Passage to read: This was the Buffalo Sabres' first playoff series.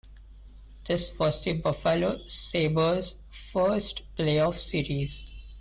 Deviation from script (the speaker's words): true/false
false